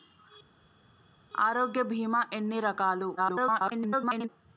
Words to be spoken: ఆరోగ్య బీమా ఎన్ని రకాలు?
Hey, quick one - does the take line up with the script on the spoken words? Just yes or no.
no